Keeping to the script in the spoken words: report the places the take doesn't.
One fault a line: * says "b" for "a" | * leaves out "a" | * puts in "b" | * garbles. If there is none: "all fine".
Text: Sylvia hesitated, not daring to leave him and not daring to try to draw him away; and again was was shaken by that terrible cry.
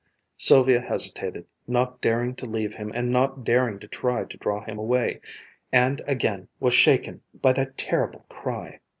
* leaves out "was"